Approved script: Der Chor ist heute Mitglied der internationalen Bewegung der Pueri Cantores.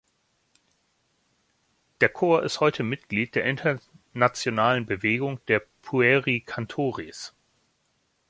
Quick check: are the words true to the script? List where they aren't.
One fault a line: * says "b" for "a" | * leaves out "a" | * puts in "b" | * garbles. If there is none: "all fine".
all fine